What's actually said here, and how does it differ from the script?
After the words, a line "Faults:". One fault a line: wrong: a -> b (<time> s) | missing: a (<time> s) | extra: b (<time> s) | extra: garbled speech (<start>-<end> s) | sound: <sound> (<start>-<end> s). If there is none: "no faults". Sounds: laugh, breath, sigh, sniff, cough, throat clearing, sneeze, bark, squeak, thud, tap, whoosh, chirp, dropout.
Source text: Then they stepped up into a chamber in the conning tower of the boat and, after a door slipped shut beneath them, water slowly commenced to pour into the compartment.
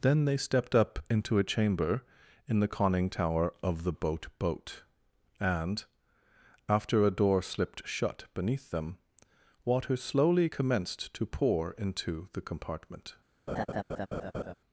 Then they stepped up into a chamber in the conning tower of the boat boat and, after a door slipped shut beneath them, water slowly commenced to pour into the compartment.
Faults:
extra: boat (4.4 s)
sound: laugh (13.5-14.5 s)